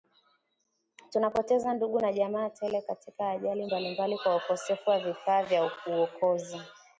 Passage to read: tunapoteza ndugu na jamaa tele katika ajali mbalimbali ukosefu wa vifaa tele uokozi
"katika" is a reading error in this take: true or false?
false